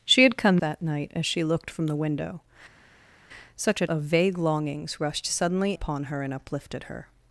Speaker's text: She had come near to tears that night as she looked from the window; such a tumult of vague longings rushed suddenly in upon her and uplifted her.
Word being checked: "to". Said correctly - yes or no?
no